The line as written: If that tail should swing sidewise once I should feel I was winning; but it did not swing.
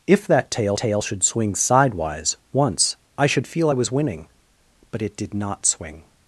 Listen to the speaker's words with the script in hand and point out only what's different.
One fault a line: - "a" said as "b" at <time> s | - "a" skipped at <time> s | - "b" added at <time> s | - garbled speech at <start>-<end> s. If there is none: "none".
- "tail" added at 0.8 s